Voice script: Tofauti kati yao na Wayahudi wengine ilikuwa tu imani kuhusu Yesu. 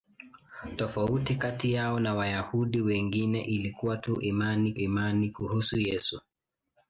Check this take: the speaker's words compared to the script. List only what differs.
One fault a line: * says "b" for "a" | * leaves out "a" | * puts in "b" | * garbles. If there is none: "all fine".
* puts in "imani"